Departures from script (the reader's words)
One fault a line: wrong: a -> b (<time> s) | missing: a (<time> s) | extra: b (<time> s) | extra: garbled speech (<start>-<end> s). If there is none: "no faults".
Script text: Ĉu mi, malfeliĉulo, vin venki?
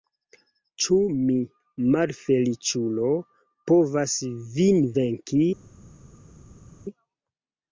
extra: povas (3.7 s)